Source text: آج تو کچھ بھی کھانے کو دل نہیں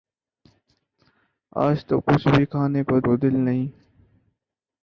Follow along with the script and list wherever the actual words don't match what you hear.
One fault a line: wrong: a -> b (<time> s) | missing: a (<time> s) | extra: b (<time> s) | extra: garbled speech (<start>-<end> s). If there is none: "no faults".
extra: کو (3.0 s)